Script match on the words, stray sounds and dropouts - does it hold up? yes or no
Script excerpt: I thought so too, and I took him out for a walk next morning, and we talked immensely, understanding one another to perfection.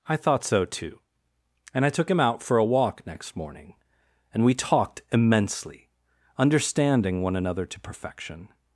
yes